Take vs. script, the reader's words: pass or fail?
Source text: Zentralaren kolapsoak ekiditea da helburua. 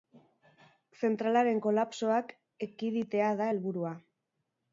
pass